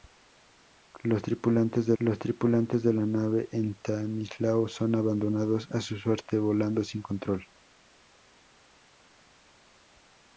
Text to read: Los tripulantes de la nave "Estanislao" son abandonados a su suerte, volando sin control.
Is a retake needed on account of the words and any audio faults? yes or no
yes